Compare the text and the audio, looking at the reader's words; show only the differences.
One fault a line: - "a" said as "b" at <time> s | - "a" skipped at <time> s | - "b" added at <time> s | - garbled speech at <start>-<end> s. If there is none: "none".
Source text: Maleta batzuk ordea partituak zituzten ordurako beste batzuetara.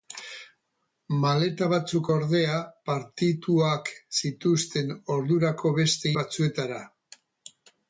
none